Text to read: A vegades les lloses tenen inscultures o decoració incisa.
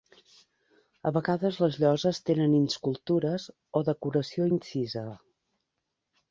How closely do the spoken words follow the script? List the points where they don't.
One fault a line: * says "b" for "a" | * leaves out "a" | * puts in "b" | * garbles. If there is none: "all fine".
all fine